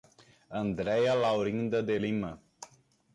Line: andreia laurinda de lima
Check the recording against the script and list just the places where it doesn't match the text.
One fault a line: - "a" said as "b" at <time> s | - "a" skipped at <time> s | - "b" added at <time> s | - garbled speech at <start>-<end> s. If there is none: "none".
none